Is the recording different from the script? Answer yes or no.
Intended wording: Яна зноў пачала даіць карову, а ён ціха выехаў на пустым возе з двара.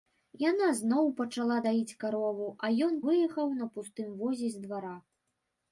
yes